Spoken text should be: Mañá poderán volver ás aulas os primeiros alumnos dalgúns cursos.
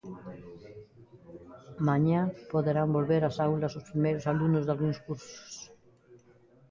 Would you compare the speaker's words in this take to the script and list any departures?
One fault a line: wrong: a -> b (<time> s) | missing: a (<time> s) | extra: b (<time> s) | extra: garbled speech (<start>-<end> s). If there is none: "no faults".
no faults